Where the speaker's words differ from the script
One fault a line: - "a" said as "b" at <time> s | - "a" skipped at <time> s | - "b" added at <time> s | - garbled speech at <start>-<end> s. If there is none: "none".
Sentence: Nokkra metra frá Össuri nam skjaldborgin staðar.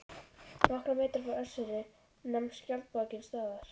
none